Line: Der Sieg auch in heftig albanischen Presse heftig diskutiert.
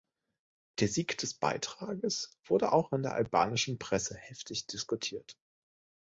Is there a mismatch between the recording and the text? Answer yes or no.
yes